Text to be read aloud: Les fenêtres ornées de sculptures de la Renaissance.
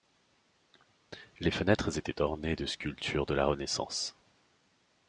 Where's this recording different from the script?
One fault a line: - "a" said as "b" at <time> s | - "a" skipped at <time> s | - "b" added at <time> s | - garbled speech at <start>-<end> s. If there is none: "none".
- "étaient" added at 2.0 s